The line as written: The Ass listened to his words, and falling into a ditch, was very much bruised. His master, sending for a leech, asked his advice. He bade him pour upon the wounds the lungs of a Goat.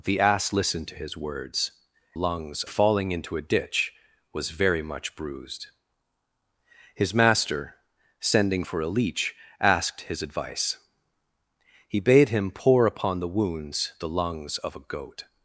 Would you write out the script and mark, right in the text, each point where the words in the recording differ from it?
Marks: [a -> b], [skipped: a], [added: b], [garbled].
The Ass listened to his words, [and -> lungs] falling into a ditch, was very much bruised. His master, sending for a leech, asked his advice. He bade him pour upon the wounds the lungs of a Goat.